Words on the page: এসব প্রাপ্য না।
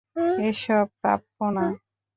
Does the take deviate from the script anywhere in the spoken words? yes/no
no